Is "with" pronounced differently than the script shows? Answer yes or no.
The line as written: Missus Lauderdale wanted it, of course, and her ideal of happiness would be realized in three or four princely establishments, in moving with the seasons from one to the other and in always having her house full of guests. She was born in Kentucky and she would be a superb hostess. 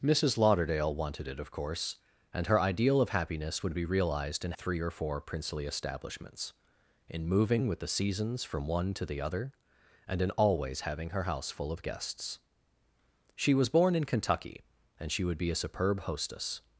no